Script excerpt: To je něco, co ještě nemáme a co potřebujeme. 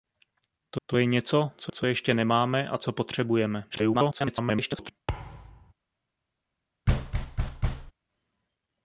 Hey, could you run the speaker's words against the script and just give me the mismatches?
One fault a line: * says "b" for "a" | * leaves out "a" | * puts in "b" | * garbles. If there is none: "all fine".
* puts in "to"
* puts in "co"
* garbles